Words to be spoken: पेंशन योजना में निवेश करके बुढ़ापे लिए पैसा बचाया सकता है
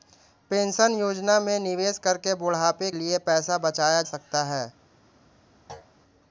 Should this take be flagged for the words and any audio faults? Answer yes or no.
yes